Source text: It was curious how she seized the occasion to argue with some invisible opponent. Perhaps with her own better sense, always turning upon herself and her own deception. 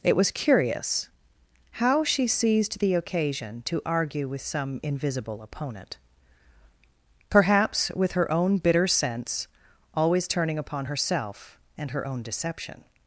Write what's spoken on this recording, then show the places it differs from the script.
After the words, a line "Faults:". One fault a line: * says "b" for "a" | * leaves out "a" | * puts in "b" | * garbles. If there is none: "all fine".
It was curious how she seized the occasion to argue with some invisible opponent. Perhaps with her own bitter sense, always turning upon herself and her own deception.
Faults:
* says "bitter" for "better"